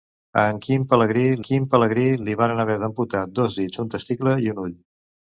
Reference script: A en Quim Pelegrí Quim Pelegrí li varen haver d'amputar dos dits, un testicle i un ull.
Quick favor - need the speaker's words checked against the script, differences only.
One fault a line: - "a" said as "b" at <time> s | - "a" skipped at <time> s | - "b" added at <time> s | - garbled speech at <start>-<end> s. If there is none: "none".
none